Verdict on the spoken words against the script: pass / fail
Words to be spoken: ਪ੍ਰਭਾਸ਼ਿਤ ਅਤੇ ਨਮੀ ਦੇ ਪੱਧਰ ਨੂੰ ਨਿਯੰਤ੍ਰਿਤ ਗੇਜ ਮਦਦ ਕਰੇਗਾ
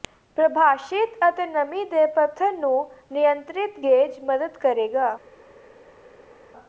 pass